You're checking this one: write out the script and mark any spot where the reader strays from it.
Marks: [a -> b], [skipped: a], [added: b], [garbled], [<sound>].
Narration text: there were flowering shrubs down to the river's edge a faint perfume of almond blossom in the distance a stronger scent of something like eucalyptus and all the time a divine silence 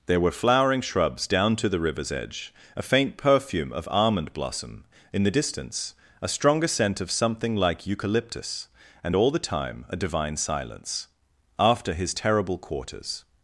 there were flowering shrubs down to the river's edge a faint perfume of almond blossom in the distance a stronger scent of something like eucalyptus and all the time a divine silence [added: after his terrible quarters]